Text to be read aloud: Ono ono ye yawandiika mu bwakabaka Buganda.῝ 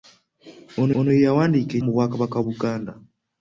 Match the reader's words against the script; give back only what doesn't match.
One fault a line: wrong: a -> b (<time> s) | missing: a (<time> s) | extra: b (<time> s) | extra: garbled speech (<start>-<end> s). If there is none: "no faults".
no faults